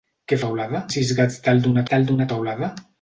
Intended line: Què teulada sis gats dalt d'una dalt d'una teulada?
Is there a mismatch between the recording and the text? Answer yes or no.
no